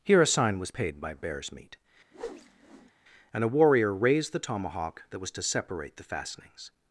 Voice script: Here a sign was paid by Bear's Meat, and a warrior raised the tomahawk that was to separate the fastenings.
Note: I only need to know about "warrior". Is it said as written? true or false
true